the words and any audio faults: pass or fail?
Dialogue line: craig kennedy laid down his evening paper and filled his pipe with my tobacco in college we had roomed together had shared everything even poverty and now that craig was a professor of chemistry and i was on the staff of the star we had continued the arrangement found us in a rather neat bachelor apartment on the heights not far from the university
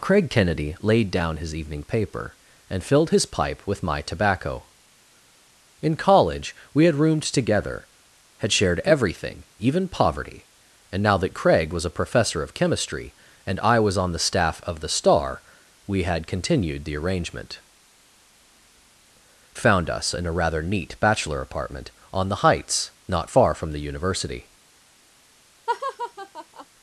fail